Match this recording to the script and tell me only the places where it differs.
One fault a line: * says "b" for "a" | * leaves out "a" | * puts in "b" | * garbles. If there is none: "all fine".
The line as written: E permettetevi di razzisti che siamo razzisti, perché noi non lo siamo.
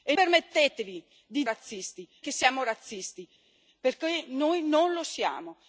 all fine